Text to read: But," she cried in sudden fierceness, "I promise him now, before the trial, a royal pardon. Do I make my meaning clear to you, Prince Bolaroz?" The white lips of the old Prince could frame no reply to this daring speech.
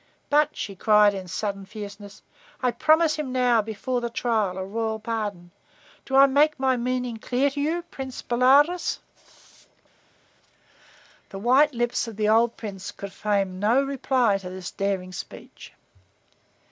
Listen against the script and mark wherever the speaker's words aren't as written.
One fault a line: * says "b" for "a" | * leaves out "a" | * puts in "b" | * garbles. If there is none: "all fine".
all fine